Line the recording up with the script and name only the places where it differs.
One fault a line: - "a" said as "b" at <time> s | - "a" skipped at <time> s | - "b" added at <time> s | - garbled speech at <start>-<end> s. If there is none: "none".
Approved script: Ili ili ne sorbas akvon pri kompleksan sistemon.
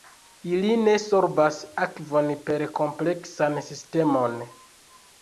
- "ili" skipped at 0.7 s
- "pri" said as "per" at 2.5 s